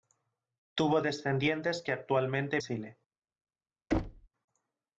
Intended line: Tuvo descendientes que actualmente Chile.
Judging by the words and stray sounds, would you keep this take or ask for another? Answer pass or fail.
fail